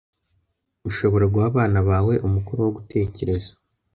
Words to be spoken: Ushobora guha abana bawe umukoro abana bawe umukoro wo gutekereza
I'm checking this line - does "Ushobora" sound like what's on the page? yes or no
yes